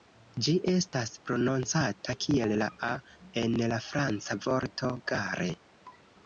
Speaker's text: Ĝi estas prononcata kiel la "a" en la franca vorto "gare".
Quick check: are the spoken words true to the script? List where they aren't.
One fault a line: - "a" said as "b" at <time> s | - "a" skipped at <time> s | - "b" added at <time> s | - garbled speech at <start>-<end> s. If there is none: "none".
none